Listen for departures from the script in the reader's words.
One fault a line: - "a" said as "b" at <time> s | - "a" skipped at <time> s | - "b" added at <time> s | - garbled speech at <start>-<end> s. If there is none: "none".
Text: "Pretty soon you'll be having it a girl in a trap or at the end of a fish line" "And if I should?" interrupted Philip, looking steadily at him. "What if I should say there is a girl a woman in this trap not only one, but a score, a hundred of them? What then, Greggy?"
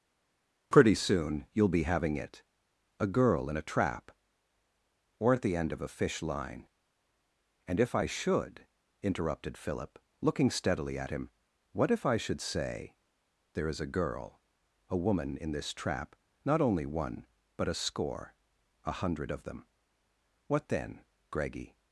none